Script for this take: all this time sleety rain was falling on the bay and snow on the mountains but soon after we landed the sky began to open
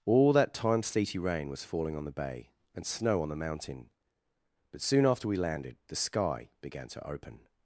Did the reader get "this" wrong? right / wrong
wrong